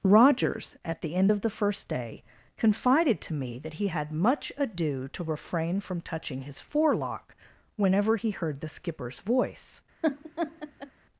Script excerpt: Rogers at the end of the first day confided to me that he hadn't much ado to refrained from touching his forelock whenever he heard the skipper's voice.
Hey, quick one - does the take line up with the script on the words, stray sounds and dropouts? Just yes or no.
no